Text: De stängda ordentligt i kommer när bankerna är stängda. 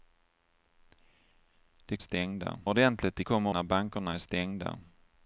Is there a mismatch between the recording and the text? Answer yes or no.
no